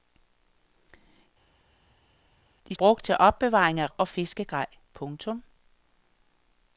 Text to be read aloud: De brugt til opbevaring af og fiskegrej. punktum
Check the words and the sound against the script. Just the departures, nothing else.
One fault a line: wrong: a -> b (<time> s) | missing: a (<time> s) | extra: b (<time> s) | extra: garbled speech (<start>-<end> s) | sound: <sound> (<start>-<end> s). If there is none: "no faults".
no faults